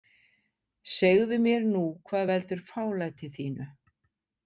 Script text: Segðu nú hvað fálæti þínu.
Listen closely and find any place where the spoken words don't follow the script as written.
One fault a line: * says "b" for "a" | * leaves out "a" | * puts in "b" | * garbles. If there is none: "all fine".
* puts in "mér"
* puts in "veldur"